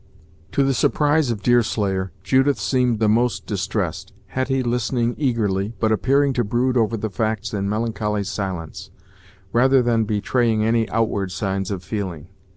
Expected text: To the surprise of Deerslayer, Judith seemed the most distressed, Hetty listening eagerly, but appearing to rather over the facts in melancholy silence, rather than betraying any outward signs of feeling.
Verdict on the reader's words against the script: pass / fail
fail